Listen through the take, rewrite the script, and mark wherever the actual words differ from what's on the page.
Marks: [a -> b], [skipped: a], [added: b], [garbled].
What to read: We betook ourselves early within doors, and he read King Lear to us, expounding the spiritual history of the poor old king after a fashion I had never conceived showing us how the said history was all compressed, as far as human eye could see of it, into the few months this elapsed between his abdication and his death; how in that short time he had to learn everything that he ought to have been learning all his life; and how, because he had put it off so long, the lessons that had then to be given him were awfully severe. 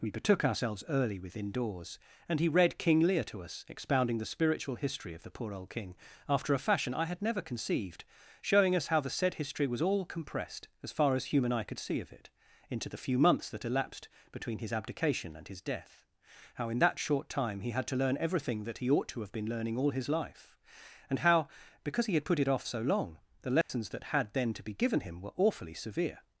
We betook ourselves early within doors, and he read King Lear to us, expounding the spiritual history of the poor old king after a fashion I had never conceived showing us how the said history was all compressed, as far as human eye could see of it, into the few months [this -> that] elapsed between his abdication and his death; how in that short time he had to learn everything that he ought to have been learning all his life; and how, because he had put it off so long, the lessons that had then to be given him were awfully severe.